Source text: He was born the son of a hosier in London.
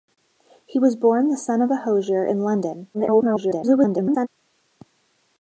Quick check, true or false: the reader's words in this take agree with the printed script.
false